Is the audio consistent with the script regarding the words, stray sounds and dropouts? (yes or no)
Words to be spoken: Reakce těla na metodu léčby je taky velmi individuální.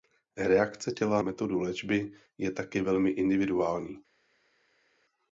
no